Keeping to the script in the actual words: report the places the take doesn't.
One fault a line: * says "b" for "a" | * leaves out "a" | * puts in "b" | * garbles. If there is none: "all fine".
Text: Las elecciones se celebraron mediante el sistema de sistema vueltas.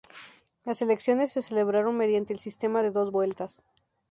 * says "dos" for "sistema"